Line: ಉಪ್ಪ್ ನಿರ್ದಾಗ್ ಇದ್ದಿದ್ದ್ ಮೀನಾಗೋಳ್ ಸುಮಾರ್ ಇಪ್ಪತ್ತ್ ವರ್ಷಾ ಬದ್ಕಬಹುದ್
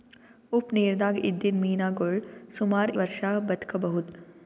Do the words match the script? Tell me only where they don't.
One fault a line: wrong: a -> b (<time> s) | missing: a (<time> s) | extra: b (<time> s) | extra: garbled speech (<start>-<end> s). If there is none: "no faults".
missing: ಇಪ್ಪತ್ತ್ (2.9 s)